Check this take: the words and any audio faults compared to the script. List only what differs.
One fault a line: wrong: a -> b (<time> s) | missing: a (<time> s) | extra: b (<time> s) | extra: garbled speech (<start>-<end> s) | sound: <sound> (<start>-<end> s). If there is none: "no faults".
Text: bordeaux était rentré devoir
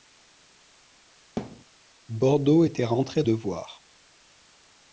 sound: thud (1.4-1.6 s)